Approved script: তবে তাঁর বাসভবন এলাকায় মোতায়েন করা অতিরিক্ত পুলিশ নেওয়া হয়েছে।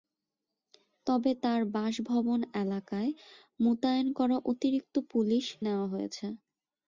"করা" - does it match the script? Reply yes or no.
yes